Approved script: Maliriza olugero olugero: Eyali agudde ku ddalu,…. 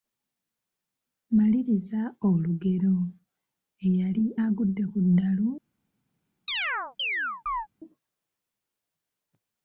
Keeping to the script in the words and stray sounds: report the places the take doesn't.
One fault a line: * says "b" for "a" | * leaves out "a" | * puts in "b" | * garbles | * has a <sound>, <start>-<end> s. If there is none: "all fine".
* leaves out "olugero"
* has a chirp, 6.5-7.7 s